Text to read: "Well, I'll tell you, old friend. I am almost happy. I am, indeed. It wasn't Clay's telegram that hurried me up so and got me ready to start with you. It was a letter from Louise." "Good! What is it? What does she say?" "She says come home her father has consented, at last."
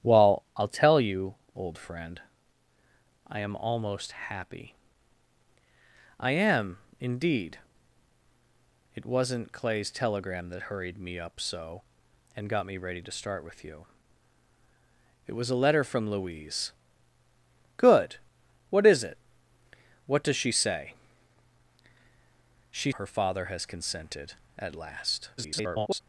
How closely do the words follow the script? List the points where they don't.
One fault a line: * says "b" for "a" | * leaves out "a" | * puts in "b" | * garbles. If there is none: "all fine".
* leaves out "says come home"
* garbles